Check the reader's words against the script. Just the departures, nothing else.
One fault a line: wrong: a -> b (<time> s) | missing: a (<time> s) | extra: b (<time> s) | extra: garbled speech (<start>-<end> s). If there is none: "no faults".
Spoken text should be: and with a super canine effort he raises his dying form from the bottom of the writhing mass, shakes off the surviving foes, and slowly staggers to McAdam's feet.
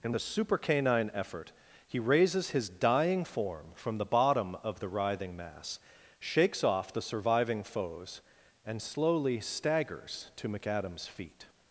missing: with (0.1 s)